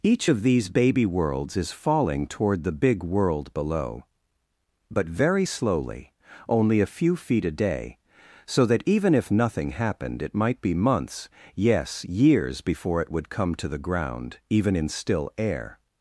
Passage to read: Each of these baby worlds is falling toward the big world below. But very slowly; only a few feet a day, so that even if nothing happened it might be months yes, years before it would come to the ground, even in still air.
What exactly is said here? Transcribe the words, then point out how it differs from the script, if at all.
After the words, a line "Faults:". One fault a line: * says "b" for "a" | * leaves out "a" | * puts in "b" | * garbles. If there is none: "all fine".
Each of these baby worlds is falling toward the big world below. But very slowly; only a few feet a day, so that even if nothing happened it might be months yes, years before it would come to the ground, even in still air.
Faults:
all fine